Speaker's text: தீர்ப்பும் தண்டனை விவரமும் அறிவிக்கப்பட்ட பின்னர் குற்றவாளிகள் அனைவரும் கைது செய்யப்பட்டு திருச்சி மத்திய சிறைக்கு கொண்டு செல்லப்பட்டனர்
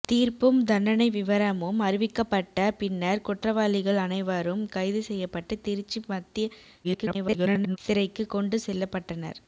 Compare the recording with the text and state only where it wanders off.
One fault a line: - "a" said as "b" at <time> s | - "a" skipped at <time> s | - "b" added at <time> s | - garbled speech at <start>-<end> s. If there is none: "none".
- garbled speech at 6.8-7.8 s